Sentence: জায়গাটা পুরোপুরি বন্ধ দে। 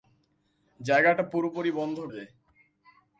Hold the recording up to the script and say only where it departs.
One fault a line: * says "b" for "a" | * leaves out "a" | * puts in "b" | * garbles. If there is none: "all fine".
all fine